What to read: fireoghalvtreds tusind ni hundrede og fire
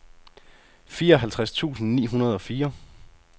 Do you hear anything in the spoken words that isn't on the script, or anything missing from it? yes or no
no